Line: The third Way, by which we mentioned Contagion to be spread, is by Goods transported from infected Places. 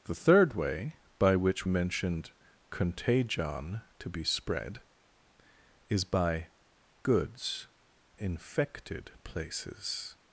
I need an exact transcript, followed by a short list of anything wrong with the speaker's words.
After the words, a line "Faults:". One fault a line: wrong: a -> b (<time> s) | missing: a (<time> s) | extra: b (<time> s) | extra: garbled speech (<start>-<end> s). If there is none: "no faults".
The third Way, by which mentioned Contagion to be spread, is by Goods infected Places.
Faults:
missing: we (1.7 s)
missing: transported from (7.7 s)